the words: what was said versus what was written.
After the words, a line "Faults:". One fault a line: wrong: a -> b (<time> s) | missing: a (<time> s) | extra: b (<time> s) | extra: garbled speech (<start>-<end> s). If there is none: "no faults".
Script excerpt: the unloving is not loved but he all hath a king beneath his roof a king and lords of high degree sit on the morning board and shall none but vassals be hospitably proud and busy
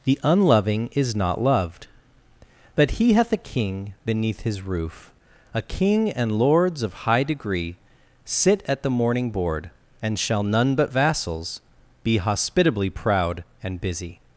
the unloving is not loved but he hath a king beneath his roof a king and lords of high degree sit at the morning board and shall none but vassals be hospitably proud and busy
Faults:
missing: all (3.1 s)
wrong: on -> at (8.7 s)